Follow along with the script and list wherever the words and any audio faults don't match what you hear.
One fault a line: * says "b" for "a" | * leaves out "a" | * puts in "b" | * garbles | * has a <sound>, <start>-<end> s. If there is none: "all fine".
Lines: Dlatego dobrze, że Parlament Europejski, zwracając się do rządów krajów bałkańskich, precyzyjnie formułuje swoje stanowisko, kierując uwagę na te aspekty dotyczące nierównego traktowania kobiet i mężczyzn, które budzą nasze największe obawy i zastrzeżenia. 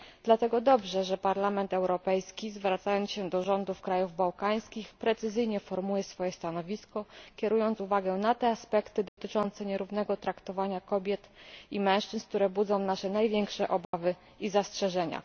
* has a dropout, 9.1-9.2 s
* has a dropout, 13.8-13.9 s